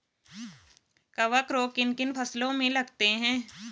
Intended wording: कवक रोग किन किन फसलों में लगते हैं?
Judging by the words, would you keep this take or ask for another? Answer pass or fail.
pass